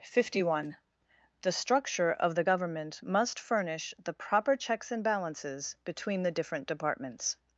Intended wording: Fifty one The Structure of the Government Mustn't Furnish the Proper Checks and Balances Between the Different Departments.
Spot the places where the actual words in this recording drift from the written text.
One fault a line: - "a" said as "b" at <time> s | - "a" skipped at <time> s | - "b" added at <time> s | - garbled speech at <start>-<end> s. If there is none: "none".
- "Mustn't" said as "Must" at 3.0 s